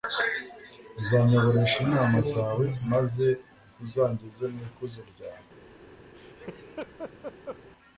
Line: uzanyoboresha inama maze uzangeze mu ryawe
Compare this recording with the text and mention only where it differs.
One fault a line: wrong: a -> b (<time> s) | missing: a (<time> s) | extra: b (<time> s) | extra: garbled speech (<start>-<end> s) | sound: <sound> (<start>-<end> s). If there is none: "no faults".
extra: zawe (2.3 s)
extra: ikuzo (4.7 s)
sound: laugh (6.1-7.6 s)